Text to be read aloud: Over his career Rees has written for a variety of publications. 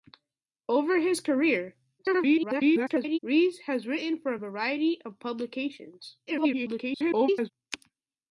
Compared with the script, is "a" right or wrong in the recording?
right